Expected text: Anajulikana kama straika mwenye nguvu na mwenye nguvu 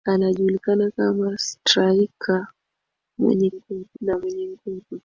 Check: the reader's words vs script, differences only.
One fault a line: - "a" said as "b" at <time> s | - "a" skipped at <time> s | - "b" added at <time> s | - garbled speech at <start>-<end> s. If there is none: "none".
none